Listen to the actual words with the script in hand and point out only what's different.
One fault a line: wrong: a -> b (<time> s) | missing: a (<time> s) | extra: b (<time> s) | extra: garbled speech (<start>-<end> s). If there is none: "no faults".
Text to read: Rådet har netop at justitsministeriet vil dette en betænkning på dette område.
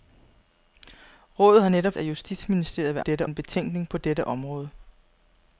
no faults